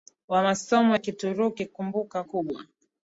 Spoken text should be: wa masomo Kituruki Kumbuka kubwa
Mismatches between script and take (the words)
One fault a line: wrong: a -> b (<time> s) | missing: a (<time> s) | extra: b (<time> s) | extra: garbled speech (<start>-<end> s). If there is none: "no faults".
no faults